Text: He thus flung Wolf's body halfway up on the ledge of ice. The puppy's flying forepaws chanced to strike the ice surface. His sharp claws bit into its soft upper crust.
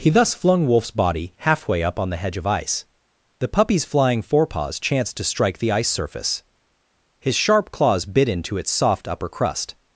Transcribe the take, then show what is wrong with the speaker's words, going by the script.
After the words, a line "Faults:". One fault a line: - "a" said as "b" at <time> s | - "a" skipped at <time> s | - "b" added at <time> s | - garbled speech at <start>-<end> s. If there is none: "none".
He thus flung Wolf's body halfway up on the hedge of ice. The puppy's flying forepaws chanced to strike the ice surface. His sharp claws bit into its soft upper crust.
Faults:
- "ledge" said as "hedge" at 2.2 s